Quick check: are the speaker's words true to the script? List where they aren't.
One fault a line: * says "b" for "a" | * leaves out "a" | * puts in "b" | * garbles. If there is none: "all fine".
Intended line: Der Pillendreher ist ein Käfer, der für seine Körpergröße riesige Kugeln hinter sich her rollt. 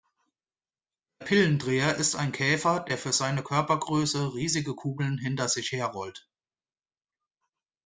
all fine